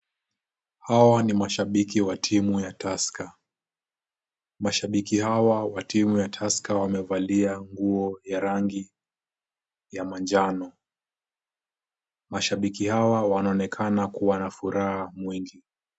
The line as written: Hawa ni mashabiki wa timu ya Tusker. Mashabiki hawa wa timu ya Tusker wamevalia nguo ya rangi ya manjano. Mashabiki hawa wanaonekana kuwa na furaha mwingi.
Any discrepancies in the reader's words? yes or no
no